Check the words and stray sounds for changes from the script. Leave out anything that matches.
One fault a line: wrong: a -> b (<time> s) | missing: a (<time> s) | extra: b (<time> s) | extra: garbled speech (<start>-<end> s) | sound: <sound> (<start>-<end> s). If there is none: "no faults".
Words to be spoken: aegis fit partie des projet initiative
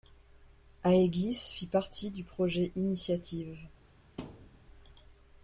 wrong: des -> du (2.1 s)
sound: thud (4.2-4.6 s)